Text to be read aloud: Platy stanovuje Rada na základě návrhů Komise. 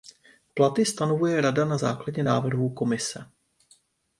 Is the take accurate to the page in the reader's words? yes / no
yes